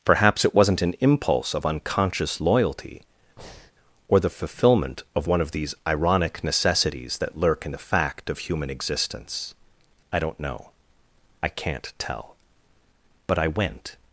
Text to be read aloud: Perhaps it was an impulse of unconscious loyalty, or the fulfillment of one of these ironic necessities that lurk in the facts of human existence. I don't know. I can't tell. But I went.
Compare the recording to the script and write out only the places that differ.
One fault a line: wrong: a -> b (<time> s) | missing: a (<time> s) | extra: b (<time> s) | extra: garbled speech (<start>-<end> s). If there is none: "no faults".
wrong: was -> wasn't (0.6 s)
wrong: facts -> fact (7.8 s)